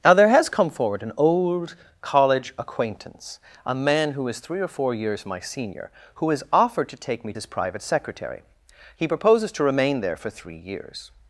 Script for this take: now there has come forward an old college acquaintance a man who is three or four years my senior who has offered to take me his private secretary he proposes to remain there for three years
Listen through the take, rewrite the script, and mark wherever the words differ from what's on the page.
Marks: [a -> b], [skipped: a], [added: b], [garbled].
now there has come forward an old college acquaintance a man who is three or four years my senior who has offered to take me his private secretary he proposes to remain there for three years